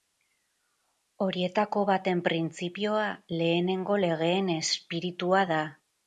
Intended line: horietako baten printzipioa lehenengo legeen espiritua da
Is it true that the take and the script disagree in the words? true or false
false